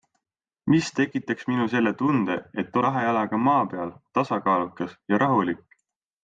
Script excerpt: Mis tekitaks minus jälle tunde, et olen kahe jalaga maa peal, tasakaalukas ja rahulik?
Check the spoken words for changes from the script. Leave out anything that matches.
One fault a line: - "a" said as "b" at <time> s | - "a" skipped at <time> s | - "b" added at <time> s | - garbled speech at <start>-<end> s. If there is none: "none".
- "olen" skipped at 2.8 s